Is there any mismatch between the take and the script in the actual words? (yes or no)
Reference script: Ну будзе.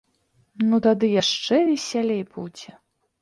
yes